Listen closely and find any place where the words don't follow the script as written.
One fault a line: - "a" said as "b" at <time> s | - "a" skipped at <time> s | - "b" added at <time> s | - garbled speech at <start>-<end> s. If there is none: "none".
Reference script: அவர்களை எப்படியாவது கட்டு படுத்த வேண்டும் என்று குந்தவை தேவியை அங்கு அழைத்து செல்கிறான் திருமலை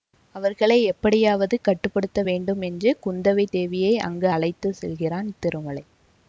none